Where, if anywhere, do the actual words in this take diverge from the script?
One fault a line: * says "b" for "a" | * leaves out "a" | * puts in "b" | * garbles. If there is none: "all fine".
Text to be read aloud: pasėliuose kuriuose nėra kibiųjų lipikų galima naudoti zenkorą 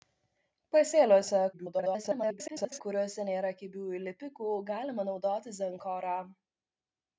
* garbles